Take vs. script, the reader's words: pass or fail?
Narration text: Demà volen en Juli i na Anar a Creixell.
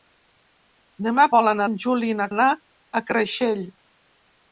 pass